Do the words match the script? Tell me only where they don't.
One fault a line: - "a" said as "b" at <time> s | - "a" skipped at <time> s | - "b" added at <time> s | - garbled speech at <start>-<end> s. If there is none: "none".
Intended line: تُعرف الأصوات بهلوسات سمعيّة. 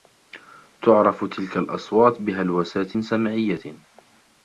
- "تلك" added at 1.2 s